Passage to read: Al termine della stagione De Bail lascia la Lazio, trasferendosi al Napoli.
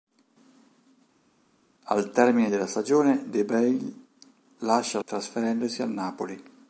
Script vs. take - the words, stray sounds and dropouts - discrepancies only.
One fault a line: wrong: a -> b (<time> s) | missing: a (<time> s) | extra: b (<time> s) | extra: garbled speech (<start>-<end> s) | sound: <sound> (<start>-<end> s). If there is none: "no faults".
missing: la Lazio (5.0 s)